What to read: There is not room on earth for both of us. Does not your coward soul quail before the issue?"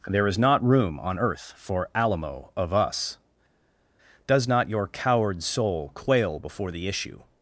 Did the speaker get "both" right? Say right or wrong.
wrong